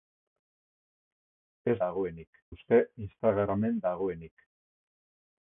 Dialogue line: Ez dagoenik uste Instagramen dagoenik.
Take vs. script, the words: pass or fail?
pass